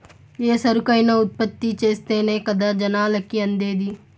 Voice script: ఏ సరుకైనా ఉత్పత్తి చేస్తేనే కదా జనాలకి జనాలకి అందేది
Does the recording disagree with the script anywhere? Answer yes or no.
yes